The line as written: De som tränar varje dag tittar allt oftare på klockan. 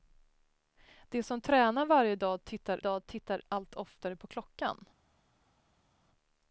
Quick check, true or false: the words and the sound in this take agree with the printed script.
false